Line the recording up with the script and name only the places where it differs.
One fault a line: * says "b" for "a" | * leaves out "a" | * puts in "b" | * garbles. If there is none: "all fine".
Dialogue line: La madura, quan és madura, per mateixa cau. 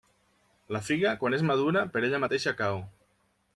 * says "figa" for "madura"
* puts in "ella"